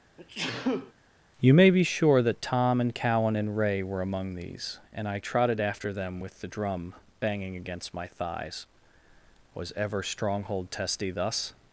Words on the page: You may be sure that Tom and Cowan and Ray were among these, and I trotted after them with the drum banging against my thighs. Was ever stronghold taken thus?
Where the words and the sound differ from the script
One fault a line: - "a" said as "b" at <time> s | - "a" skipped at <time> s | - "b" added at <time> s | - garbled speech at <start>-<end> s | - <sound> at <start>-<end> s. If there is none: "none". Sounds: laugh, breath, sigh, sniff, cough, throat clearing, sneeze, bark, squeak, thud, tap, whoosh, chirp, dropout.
- sneeze at 0.2-0.9 s
- "taken" said as "testy" at 10.7 s